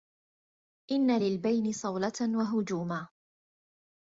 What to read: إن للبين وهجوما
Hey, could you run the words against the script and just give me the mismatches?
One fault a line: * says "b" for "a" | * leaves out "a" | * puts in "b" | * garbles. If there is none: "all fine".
* puts in "صولة"